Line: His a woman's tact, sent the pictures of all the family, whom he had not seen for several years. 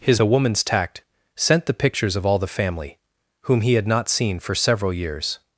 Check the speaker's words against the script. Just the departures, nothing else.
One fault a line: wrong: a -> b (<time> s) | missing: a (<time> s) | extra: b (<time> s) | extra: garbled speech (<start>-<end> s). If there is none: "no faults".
no faults